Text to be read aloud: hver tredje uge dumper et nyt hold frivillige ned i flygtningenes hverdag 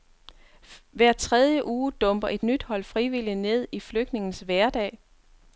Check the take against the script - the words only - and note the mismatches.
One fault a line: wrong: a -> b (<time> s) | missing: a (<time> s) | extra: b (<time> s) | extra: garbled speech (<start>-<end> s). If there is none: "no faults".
no faults